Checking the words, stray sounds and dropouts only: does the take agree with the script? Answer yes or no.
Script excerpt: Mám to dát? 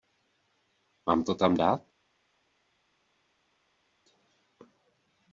no